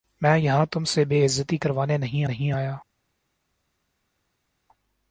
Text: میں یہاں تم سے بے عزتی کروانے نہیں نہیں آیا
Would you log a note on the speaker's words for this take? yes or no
no